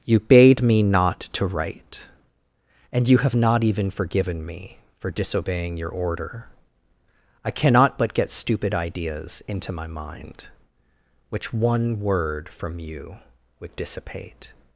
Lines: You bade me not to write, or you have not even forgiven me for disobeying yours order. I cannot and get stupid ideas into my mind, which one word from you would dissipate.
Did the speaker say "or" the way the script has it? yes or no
no